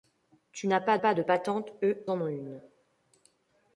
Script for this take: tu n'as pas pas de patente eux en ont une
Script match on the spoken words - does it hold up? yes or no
yes